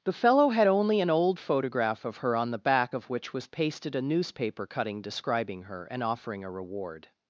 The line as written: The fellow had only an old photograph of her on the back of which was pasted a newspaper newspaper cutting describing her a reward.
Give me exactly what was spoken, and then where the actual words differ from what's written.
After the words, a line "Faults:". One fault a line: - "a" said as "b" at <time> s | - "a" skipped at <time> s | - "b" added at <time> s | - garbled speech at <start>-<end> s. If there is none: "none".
The fellow had only an old photograph of her on the back of which was pasted a newspaper cutting describing her and offering a reward.
Faults:
- "newspaper" skipped at 4.7 s
- "and offering" added at 5.9 s